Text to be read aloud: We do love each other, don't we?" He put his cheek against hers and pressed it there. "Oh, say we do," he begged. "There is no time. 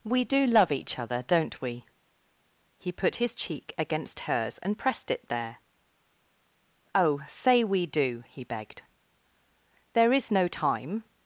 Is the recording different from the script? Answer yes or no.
no